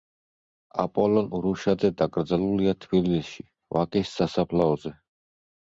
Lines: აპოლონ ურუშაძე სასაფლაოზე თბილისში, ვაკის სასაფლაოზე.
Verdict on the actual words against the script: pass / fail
fail